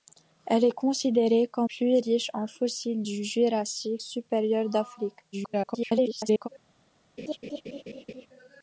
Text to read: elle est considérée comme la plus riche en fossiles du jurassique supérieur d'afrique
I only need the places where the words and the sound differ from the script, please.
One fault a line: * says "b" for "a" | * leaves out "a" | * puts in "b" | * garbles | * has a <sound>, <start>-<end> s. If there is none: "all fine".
* leaves out "la"
* garbles
* has a laugh, 7.2-8.3 s